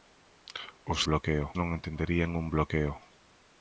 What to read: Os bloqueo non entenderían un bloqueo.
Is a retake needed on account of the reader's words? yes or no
no